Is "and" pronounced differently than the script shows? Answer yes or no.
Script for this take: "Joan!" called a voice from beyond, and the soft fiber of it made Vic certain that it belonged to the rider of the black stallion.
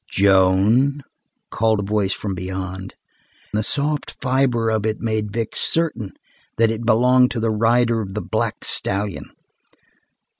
yes